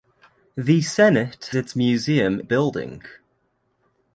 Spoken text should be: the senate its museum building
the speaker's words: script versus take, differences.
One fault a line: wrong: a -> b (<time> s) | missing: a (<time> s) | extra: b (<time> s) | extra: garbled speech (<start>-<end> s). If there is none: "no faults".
no faults